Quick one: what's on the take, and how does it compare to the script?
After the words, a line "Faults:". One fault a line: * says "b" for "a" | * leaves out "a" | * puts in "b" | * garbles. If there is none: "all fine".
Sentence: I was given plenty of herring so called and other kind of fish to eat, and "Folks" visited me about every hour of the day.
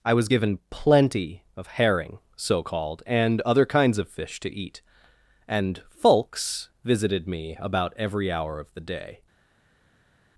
I was given plenty of herring so called and other kinds of fish to eat, and "Folks" visited me about every hour of the day.
Faults:
* says "kinds" for "kind"